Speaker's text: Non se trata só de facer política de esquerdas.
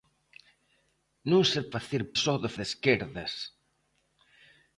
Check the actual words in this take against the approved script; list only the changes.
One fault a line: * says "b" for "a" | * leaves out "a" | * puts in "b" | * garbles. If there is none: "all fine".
* says "facer" for "trata"
* leaves out "facer política"